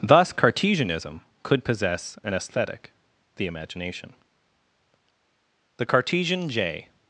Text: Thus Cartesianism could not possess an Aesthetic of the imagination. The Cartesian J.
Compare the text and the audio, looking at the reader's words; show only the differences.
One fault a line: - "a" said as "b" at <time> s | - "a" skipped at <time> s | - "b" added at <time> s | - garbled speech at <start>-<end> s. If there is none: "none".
- "not" skipped at 1.7 s
- "of" skipped at 2.9 s